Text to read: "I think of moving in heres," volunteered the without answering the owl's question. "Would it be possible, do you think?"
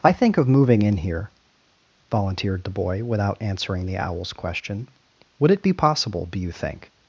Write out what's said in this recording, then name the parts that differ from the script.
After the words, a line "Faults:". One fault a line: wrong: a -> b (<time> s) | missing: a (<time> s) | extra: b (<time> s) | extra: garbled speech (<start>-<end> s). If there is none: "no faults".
"I think of moving in here," volunteered the boy without answering the owl's question. "Would it be possible, do you think?"
Faults:
wrong: heres -> here (1.0 s)
extra: boy (2.7 s)